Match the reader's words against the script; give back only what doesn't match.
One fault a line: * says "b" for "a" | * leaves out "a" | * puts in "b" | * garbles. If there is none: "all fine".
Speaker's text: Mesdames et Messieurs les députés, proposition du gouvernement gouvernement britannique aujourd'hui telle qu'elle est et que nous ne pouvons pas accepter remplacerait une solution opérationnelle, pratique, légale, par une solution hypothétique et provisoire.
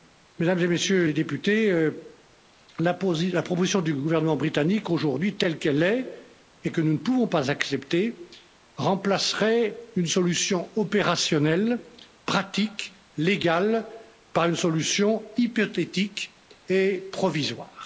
* puts in "la"
* leaves out "gouvernement"